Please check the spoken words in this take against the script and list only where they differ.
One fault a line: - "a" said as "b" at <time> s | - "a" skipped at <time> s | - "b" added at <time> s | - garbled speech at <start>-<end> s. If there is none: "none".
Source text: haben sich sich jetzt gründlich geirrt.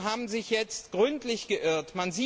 - "sich" skipped at 0.5 s